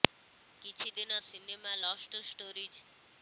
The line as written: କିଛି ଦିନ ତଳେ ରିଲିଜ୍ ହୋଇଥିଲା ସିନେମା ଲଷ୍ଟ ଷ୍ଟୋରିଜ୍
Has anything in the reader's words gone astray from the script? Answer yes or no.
yes